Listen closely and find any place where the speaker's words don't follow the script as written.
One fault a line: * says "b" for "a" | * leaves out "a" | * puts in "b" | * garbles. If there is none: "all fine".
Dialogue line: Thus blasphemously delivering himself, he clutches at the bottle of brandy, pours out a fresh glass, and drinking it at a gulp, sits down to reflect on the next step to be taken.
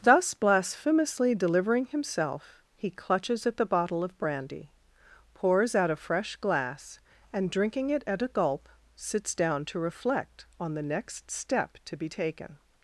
all fine